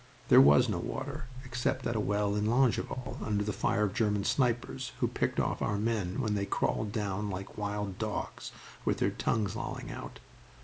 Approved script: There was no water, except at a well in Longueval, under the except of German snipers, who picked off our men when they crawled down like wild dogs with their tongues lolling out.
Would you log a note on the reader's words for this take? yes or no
yes